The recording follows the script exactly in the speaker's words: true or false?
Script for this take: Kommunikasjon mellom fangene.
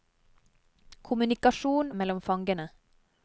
true